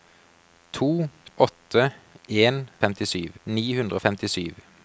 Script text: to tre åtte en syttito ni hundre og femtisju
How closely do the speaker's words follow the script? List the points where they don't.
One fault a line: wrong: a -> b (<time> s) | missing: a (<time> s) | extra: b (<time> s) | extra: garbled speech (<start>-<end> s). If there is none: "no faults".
missing: tre (1.1 s)
wrong: syttito -> femtisju (2.9 s)